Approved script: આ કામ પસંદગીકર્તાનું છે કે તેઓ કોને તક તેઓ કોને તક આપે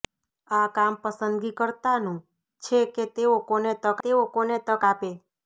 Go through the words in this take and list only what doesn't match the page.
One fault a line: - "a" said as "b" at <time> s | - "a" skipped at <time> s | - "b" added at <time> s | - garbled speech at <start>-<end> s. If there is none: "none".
none